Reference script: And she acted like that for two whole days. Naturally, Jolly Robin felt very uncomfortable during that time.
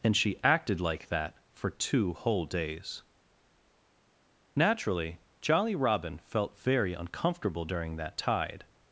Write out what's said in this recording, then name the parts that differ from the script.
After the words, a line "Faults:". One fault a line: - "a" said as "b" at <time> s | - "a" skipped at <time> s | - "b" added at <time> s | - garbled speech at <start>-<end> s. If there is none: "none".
And she acted like that for two whole days. Naturally, Jolly Robin felt very uncomfortable during that tide.
Faults:
- "time" said as "tide" at 8.2 s